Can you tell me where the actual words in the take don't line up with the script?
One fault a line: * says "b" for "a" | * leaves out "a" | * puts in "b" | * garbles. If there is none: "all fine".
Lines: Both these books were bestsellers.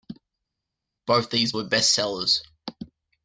* leaves out "books"